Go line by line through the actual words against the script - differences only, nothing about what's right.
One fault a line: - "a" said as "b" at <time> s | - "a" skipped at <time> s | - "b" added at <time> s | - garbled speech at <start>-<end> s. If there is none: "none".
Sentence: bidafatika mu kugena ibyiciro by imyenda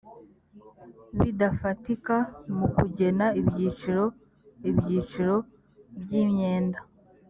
- "ibyiciro" added at 4.7 s